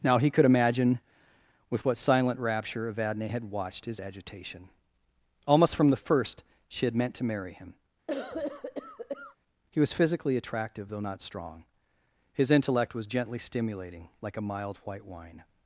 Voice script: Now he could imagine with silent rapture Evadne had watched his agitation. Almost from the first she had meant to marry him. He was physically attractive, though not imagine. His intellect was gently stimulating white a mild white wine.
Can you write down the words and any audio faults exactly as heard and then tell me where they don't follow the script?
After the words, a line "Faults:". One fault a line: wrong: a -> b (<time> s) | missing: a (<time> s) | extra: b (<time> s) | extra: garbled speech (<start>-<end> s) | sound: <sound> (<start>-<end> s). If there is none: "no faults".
Now he could imagine with what silent rapture Evadne had watched his agitation. Almost from the first she had meant to marry him. He was physically attractive, though not strong. His intellect was gently stimulating like a mild white wine.
Faults:
extra: what (1.9 s)
sound: cough (8.1-9.4 s)
wrong: imagine -> strong (11.2 s)
wrong: white -> like (14.2 s)